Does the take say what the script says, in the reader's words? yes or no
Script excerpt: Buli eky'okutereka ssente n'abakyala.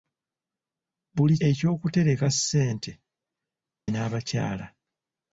yes